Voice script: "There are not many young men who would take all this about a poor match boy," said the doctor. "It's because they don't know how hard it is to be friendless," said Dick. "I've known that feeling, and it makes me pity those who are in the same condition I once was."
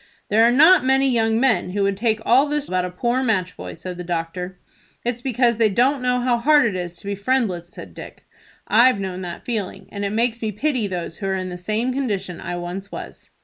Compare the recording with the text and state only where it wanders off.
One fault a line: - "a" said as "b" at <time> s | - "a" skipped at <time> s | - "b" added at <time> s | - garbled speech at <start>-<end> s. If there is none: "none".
none